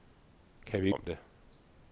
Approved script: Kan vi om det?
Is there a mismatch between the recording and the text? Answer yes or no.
no